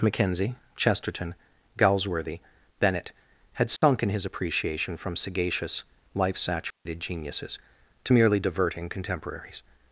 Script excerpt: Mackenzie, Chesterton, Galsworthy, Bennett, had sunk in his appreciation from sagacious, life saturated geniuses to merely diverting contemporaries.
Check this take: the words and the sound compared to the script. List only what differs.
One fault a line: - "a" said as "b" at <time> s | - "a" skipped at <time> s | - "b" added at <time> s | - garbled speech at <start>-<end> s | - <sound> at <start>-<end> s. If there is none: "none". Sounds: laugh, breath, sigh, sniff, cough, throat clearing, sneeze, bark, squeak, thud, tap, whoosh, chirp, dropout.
- dropout at 3.8-3.8 s
- dropout at 6.7-6.9 s